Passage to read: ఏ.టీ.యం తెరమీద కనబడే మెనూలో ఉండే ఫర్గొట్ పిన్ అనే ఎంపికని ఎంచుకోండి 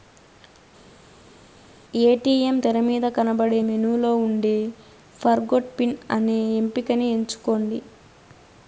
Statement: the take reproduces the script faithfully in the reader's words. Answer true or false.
true